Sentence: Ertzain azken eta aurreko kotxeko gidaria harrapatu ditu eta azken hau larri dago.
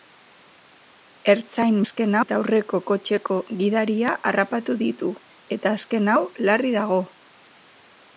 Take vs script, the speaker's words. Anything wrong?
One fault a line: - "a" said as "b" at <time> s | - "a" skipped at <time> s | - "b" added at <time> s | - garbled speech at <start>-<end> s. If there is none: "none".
none